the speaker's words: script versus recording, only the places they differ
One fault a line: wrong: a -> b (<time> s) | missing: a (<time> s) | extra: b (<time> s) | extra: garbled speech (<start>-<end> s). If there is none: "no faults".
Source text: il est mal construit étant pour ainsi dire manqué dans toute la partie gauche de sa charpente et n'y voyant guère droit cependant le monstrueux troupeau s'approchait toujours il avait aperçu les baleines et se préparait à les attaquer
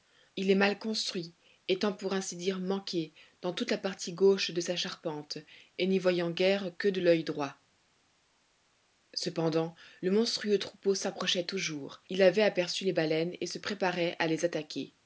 extra: que de l'oeil (6.8 s)